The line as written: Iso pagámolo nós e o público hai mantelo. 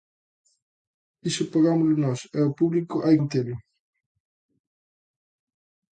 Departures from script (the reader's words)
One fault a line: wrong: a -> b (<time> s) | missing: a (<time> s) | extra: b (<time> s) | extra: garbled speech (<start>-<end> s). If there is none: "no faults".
no faults